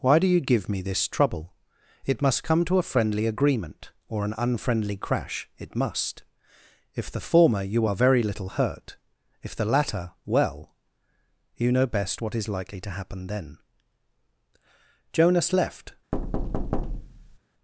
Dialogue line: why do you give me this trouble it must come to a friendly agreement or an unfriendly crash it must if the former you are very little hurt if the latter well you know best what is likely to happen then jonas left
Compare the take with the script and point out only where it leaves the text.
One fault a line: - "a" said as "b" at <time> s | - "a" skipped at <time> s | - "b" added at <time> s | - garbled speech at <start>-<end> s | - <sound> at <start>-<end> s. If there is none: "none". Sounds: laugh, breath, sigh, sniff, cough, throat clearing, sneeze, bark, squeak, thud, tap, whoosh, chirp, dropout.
- thud at 16.1-17.4 s